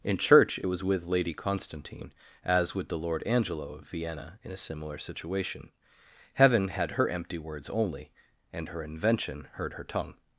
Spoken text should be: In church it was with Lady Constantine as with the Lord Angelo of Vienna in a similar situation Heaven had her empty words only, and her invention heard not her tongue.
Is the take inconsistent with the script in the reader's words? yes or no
yes